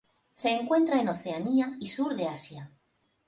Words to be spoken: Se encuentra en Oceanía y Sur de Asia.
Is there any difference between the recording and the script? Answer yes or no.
no